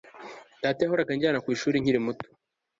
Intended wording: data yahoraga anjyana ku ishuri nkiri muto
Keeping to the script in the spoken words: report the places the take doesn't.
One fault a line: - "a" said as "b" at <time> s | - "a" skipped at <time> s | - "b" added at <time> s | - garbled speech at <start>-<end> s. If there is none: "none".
none